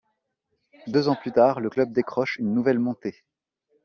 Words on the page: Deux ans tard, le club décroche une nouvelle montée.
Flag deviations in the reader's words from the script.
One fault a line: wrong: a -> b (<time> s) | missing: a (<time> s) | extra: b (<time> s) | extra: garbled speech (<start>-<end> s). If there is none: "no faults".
extra: plus (1.1 s)